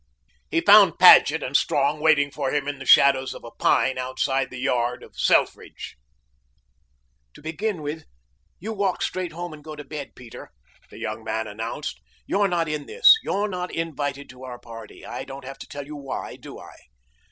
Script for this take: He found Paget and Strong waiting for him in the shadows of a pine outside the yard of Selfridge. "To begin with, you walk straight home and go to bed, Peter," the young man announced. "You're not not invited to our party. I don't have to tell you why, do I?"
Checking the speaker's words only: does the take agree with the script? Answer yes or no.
no